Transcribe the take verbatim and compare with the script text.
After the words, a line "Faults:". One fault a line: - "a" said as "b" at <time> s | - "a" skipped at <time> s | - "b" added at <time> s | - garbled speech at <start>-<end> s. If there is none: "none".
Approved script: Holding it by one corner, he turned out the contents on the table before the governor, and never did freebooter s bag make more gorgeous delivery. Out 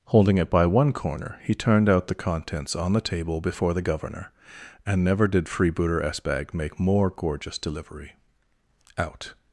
Holding it by one corner, he turned out the contents on the table before the governor, and never did freebooter s bag make more gorgeous delivery. Out
Faults:
none